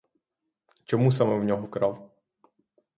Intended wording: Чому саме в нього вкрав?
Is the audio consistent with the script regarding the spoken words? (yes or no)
yes